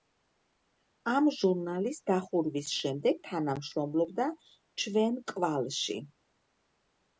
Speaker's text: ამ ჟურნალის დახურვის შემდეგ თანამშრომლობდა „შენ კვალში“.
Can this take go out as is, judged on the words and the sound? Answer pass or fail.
fail